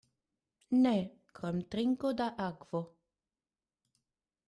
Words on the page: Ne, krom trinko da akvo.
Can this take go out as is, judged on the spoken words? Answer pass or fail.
pass